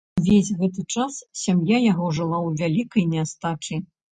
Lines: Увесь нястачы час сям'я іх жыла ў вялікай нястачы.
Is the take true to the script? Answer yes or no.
no